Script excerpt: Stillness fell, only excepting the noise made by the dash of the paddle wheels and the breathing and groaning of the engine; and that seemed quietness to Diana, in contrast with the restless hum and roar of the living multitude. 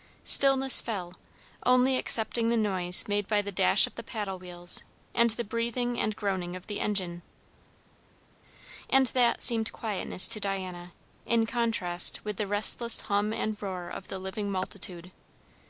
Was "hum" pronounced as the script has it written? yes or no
yes